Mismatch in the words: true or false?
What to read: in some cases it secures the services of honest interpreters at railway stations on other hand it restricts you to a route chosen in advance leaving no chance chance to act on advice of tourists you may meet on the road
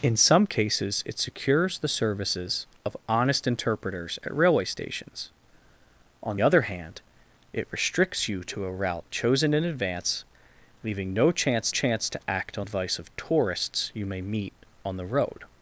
false